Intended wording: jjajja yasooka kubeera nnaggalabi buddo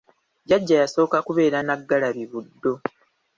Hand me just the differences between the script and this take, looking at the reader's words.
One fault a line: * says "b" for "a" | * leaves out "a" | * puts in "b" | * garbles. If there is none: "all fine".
all fine